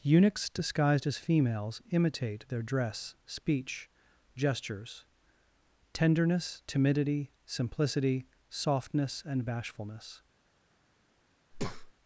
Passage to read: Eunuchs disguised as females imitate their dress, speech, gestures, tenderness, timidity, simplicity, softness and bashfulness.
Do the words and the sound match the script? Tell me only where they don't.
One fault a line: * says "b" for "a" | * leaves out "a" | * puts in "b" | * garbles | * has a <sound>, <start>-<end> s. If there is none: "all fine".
* has a breath, 11.5-11.9 s